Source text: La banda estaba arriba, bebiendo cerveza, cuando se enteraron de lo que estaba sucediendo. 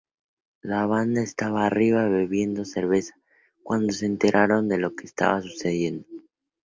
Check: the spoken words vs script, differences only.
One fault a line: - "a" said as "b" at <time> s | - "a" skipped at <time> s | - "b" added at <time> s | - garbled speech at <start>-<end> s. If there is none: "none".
none